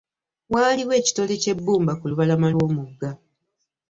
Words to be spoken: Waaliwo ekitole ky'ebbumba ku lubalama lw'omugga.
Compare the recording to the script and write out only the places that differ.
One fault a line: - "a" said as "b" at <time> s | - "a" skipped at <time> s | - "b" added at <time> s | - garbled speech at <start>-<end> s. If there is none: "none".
none